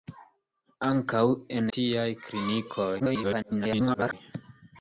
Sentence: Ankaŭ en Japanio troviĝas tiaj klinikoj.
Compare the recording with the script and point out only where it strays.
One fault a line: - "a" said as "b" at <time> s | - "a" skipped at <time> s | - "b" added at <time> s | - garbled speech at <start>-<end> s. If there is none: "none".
- "Japanio troviĝas" skipped at 1.7 s
- garbled speech at 3.0-4.1 s